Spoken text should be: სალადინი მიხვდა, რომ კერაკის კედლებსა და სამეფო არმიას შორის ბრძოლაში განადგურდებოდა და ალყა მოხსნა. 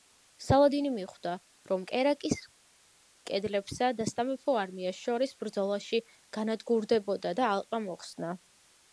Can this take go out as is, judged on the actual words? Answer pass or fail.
pass